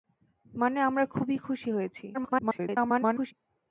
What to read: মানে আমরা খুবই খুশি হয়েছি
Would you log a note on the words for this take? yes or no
yes